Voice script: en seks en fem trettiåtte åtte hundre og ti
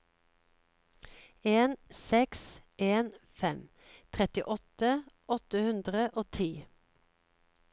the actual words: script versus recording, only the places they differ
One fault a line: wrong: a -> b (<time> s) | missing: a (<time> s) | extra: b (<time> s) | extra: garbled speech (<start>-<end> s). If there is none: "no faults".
no faults